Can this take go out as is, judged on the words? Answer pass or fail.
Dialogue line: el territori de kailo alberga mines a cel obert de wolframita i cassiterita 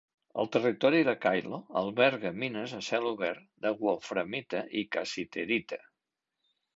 pass